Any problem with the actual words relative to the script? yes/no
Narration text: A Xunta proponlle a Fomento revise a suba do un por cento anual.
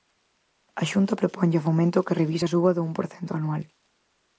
yes